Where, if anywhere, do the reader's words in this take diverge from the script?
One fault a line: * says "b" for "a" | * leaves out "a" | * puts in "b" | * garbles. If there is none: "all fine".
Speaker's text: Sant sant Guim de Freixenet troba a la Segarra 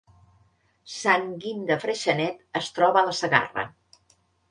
* leaves out "sant"
* puts in "es"